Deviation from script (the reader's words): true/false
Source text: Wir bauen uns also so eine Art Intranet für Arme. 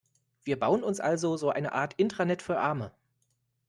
false